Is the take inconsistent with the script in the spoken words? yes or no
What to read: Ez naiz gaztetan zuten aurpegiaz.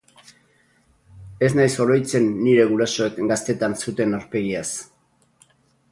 yes